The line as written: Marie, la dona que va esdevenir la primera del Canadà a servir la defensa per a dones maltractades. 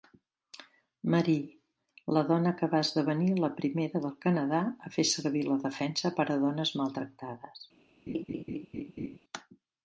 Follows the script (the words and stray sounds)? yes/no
no